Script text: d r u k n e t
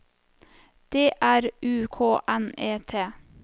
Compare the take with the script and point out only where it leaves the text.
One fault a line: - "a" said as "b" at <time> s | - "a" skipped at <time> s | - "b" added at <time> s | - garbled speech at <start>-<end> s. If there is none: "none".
none